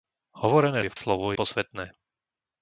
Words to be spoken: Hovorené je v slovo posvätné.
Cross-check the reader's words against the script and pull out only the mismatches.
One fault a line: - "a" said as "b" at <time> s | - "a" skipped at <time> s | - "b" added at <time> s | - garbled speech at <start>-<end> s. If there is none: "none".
none